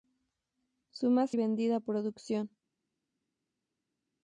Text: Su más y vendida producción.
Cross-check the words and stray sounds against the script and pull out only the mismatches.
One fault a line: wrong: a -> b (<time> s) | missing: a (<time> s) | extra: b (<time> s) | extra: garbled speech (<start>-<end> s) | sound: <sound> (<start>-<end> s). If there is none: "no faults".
no faults